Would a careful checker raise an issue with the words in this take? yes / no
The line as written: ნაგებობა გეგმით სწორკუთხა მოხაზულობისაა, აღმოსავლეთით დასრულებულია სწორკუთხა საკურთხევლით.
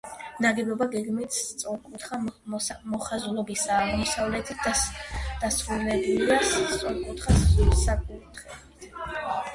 no